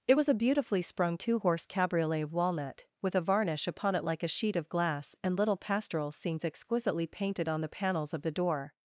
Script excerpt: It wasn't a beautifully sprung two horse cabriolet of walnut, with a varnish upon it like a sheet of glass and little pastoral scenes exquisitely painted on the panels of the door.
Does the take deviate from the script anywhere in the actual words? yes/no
yes